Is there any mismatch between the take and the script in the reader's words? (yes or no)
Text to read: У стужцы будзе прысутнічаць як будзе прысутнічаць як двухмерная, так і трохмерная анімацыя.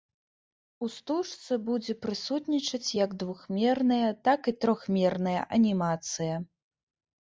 yes